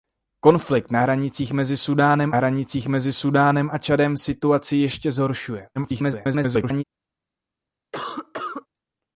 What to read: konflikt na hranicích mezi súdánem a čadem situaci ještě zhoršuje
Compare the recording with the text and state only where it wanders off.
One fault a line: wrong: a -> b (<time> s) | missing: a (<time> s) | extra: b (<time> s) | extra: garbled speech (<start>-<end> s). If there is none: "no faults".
extra: hranicích mezi súdánem (2.3 s)
extra: garbled speech (5.8-6.8 s)